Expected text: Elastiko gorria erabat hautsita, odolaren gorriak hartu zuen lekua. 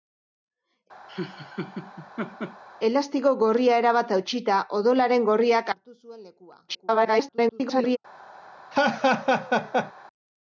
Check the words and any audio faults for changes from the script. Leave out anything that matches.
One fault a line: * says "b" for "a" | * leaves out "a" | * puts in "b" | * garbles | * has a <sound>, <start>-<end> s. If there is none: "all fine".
* has a laugh, 1.1-2.6 s
* garbles
* has a laugh, 8.7-9.9 s